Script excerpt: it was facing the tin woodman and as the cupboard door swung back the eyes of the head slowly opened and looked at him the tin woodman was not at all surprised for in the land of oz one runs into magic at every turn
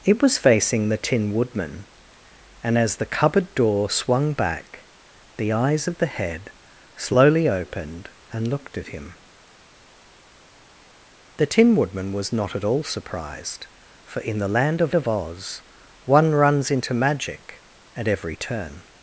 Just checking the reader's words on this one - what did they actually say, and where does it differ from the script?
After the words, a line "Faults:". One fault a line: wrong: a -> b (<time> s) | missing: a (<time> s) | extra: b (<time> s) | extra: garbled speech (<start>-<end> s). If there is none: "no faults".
it was facing the tin woodman and as the cupboard door swung back the eyes of the head slowly opened and looked at him the tin woodman was not at all surprised for in the land of of oz one runs into magic at every turn
Faults:
extra: of (14.9 s)